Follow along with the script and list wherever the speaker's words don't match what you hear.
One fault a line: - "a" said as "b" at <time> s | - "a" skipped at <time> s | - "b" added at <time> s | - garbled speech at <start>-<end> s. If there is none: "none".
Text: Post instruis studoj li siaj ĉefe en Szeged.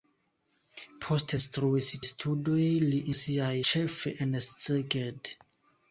none